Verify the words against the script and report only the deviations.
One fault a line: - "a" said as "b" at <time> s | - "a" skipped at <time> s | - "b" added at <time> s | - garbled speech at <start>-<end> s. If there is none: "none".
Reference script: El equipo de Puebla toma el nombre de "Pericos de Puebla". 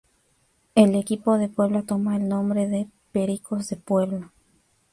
none